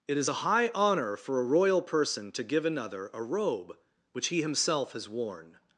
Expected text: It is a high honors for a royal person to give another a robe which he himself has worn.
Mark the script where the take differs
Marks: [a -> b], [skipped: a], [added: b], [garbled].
It is a high [honors -> honor] for a royal person to give another a robe which he himself has worn.